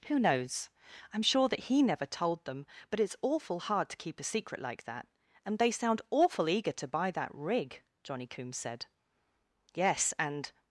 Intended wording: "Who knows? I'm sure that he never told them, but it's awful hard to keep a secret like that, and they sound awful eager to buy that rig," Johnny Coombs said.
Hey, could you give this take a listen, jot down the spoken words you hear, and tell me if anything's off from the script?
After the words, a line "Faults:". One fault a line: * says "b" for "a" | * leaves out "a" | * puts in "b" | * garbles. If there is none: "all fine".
"Who knows? I'm sure that he never told them, but it's awful hard to keep a secret like that, and they sound awful eager to buy that rig," Johnny Coombs said. "Yes, and
Faults:
* puts in "Yes and"